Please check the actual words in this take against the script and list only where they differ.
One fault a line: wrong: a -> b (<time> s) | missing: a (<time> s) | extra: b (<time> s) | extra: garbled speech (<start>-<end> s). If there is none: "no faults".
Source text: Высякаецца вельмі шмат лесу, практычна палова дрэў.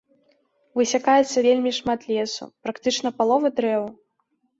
no faults